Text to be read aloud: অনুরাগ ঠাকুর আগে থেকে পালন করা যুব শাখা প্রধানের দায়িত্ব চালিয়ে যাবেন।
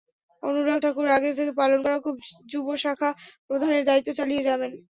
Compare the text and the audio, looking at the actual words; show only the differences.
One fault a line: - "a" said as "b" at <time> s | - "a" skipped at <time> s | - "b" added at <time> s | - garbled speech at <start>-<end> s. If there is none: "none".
none